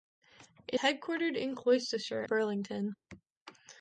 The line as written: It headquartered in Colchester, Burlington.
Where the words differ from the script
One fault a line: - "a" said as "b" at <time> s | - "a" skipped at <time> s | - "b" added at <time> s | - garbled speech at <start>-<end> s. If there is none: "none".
none